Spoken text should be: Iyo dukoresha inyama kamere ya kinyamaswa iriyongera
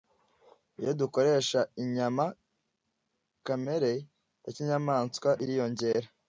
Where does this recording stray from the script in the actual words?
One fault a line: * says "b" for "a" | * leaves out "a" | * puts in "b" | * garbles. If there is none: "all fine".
all fine